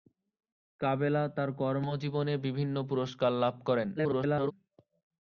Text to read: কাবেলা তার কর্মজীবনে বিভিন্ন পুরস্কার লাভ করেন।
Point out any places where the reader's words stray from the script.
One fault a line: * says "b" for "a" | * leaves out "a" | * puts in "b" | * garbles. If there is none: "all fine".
* garbles